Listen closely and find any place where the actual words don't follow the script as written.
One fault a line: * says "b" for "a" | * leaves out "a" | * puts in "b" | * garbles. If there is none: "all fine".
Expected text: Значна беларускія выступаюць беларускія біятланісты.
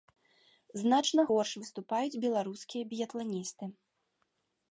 * says "горш" for "беларускія"